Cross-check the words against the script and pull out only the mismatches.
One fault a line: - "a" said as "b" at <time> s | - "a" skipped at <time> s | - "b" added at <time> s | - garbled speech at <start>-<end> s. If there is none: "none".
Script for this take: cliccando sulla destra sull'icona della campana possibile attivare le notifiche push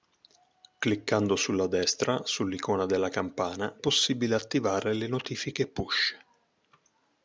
none